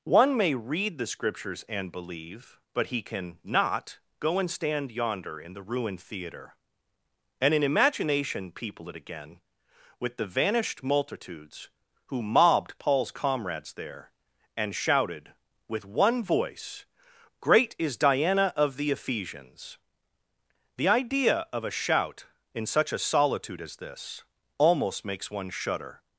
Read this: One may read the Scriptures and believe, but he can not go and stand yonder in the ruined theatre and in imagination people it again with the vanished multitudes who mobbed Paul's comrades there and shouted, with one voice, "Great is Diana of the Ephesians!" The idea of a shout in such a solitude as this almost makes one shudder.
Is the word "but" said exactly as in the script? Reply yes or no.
yes